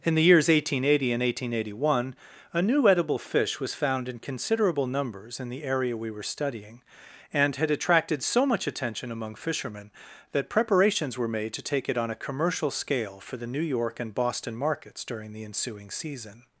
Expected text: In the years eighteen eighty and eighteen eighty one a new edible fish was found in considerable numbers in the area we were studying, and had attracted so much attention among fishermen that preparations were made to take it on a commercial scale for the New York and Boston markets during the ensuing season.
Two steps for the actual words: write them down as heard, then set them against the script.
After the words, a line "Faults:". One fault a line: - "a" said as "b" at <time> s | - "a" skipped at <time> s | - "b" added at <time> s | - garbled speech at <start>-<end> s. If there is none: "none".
In the years eighteen eighty and eighteen eighty one a new edible fish was found in considerable numbers in the area we were studying, and had attracted so much attention among fishermen that preparations were made to take it on a commercial scale for the New York and Boston markets during the ensuing season.
Faults:
none